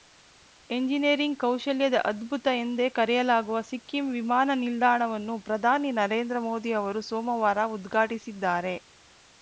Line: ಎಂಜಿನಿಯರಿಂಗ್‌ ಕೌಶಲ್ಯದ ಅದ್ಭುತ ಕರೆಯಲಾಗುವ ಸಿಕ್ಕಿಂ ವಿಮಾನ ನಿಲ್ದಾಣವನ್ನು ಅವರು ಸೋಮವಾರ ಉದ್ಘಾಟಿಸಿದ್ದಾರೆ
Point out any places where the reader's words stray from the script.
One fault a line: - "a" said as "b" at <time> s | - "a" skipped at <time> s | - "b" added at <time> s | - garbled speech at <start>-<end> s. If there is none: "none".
- "ಎಂದೇ" added at 2.6 s
- "ಪ್ರಧಾನಿ ನರೇಂದ್ರ ಮೋದಿ" added at 5.5 s